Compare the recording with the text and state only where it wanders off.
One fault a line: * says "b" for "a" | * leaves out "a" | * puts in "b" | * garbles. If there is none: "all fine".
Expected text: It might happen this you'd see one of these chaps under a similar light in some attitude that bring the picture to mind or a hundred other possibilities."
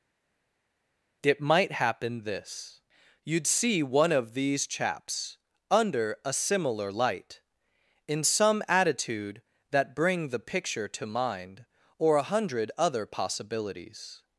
all fine